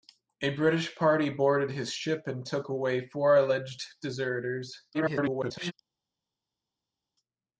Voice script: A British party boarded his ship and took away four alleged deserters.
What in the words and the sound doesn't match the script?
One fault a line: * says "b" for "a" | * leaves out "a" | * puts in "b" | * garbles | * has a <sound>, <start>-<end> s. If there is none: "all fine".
* garbles